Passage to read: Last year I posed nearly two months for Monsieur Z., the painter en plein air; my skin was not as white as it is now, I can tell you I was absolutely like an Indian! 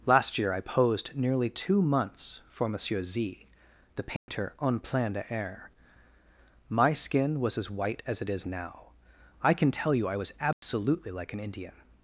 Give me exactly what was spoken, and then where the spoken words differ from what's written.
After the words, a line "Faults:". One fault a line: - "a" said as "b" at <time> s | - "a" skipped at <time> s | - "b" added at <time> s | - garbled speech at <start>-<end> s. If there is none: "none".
Last year I posed nearly two months for Monsieur Z., the painter en plein air; my skin was as white as it is now, I can tell you I was absolutely like an Indian!
Faults:
- "not" skipped at 7.6 s